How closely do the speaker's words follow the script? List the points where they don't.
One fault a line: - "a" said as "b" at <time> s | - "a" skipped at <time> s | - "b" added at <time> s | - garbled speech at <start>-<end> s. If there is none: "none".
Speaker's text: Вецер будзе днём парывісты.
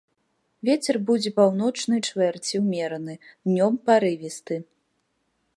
- "паўночнай чвэрці ўмераны" added at 1.4 s